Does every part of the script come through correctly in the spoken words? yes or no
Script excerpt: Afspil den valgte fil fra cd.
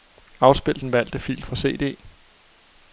yes